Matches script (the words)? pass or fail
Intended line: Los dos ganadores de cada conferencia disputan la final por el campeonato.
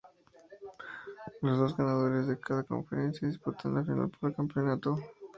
pass